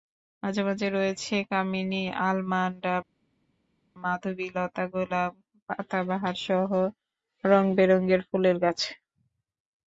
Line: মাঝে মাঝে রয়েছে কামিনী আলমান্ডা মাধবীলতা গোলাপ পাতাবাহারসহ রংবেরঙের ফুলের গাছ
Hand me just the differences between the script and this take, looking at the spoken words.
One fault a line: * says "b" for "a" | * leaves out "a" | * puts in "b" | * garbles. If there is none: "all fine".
all fine